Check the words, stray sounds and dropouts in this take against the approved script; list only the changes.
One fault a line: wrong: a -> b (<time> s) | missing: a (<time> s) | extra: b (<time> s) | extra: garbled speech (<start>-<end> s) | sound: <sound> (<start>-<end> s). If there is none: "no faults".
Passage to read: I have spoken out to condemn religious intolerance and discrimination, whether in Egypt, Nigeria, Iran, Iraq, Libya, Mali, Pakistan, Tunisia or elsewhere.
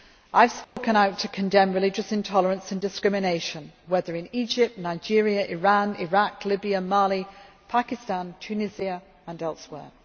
sound: dropout (0.6-0.8 s)